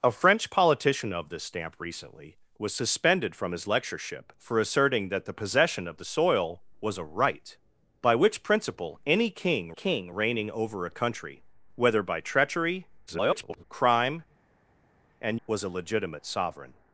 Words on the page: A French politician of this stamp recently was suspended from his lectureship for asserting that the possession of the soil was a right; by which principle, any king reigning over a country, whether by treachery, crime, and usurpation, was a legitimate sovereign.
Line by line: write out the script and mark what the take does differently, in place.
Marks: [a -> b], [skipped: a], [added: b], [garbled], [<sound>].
A French politician of this stamp recently was suspended from his lectureship for asserting that the possession of the soil was a right; by which principle, any king [added: king] reigning over a country, whether by treachery, [garbled] crime, and [skipped: usurpation,] was a legitimate sovereign.